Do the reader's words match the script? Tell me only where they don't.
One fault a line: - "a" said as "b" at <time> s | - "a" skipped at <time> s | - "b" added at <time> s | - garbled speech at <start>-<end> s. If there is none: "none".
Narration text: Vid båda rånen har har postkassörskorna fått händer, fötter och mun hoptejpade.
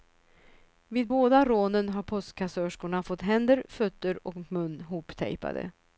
- "har" skipped at 2.0 s